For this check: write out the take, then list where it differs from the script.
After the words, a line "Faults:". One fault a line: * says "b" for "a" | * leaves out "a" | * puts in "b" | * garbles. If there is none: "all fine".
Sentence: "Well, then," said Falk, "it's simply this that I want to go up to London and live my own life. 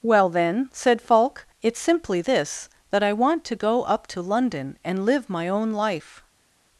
"Well, then," said Falk, "it's simply this that I want to go up to London and live my own life.
Faults:
all fine